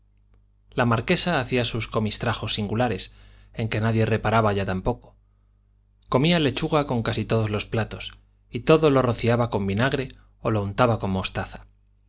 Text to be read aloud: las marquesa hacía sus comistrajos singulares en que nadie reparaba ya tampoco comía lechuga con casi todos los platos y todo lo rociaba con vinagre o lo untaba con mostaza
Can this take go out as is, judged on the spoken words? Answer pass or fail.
fail